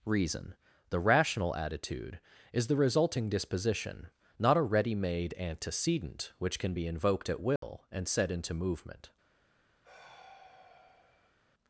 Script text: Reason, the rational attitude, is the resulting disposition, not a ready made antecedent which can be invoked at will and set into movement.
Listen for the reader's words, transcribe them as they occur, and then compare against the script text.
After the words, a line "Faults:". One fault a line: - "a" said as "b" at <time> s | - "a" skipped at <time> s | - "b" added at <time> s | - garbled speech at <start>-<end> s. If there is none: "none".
Reason, the rational attitude, is the resulting disposition, not a ready made antecedent which can be invoked at will and set into movement.
Faults:
none